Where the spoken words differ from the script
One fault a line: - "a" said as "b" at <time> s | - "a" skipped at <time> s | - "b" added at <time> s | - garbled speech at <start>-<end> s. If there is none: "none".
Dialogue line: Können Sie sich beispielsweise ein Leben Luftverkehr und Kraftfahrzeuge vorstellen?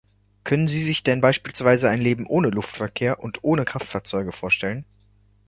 - "denn" added at 1.0 s
- "ohne" added at 2.2 s
- "ohne" added at 3.4 s